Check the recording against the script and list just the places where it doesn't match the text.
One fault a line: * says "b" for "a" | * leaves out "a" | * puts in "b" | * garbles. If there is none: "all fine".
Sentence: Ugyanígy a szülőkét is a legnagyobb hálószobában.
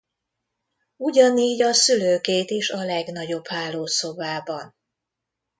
all fine